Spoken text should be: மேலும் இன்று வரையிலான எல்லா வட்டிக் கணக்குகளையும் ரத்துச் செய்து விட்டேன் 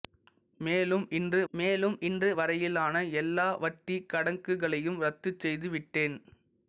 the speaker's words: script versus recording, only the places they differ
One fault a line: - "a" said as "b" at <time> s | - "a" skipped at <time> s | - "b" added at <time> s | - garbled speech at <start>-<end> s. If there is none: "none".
- "மேலும் இன்று" added at 1.5 s